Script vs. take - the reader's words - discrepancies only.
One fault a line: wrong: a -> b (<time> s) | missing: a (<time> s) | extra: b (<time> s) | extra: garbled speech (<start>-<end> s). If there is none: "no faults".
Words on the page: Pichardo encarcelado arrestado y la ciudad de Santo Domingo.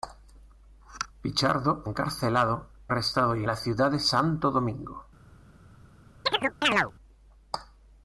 no faults